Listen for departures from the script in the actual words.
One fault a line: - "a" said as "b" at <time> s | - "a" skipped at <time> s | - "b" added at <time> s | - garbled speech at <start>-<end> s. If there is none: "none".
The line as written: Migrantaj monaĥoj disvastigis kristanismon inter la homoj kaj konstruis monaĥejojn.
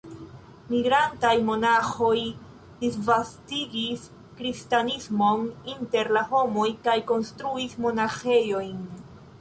none